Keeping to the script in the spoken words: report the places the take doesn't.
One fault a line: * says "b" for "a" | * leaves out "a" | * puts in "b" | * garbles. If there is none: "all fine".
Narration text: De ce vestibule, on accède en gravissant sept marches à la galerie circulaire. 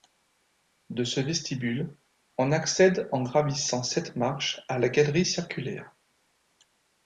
all fine